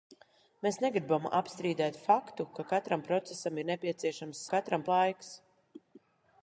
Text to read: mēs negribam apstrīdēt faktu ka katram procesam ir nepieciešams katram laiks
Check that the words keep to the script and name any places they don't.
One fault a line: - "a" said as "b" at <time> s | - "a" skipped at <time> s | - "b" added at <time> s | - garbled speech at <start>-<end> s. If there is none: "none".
none